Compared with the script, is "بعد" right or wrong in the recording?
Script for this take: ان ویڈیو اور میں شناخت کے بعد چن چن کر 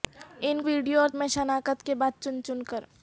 right